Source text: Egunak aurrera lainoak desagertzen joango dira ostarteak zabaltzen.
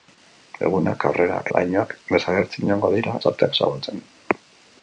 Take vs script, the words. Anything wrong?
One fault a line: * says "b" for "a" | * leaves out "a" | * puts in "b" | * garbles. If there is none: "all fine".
all fine